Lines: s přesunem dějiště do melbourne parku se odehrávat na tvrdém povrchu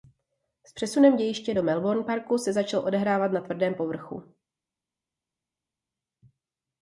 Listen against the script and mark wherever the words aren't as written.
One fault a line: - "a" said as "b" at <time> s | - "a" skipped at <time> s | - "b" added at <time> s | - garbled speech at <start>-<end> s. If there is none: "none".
- "začal" added at 2.5 s